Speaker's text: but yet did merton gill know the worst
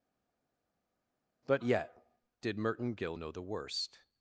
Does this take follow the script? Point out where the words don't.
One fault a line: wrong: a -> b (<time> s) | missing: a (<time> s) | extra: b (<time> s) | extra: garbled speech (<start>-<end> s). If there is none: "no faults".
no faults